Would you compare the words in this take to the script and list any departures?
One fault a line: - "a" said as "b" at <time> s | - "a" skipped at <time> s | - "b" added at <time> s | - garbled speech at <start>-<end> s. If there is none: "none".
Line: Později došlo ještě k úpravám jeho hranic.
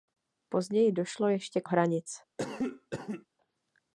- "úpravám jeho" skipped at 1.7 s